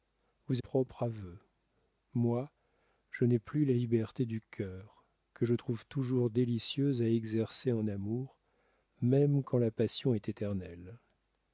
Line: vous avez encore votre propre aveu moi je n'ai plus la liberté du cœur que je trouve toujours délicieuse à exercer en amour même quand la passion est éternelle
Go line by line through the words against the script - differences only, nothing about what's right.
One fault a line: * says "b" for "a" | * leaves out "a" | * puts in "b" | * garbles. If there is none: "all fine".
* leaves out "avez encore votre"